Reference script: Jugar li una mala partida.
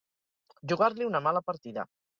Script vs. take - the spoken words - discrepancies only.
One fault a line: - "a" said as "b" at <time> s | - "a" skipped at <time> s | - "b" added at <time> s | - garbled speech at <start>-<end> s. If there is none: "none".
none